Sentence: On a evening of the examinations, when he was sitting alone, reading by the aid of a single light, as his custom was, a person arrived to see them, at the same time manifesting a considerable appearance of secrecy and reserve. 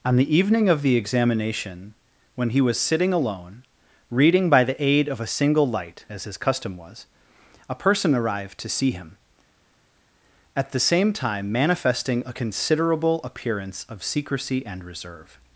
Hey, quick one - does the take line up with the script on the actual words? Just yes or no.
no